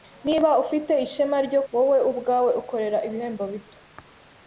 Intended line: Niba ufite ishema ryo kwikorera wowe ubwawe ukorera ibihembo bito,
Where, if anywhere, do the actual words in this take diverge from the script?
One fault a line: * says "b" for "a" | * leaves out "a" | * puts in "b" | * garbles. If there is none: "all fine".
* leaves out "kwikorera"